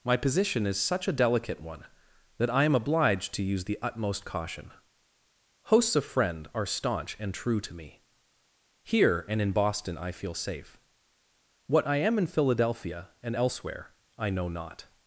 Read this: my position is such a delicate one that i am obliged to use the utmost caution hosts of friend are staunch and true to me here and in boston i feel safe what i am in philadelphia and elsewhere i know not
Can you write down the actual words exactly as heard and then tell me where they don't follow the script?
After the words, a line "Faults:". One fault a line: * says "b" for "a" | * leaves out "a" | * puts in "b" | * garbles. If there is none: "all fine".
my position is such a delicate one that i am obliged to use the utmost caution hosts of friend are staunch and true to me here and in boston i feel safe what i am in philadelphia and elsewhere i know not
Faults:
all fine